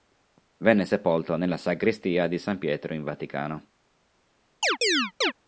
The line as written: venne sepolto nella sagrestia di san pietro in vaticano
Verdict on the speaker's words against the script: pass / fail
pass